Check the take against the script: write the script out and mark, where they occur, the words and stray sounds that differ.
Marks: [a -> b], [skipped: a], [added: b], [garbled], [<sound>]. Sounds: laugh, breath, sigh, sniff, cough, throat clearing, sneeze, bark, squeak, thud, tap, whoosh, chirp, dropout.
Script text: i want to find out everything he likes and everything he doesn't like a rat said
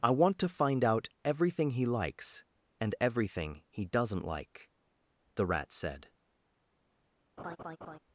i want to find out everything he likes and everything he doesn't like [a -> the] rat said [laugh]